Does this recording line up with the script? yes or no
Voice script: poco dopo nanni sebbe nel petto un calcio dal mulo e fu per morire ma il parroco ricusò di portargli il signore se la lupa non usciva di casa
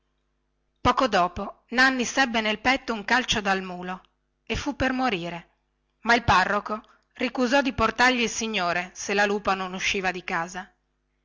yes